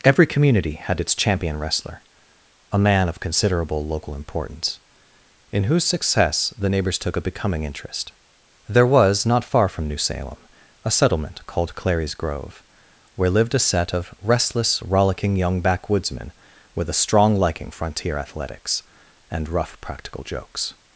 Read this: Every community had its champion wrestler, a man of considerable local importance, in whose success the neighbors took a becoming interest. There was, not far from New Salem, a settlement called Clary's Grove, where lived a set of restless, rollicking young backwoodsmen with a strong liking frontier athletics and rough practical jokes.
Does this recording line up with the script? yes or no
yes